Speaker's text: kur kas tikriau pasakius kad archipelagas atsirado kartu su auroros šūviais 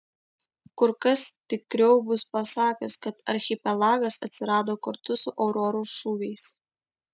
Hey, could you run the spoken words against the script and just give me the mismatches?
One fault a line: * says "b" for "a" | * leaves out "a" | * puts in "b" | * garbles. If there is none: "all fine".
* puts in "bus"